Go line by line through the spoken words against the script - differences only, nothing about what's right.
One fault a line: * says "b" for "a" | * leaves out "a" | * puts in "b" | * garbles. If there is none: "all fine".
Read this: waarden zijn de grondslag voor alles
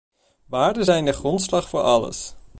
all fine